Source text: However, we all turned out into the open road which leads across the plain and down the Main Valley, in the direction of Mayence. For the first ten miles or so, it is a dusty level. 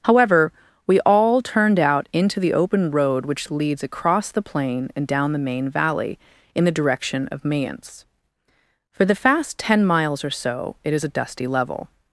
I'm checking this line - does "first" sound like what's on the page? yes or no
no